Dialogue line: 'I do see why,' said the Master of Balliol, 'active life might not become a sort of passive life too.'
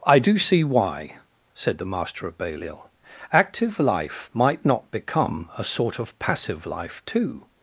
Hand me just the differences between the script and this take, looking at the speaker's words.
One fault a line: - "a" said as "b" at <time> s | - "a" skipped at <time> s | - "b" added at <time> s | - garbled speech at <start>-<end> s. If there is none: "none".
none